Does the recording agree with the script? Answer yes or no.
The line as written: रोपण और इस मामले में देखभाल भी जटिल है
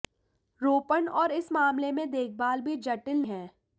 yes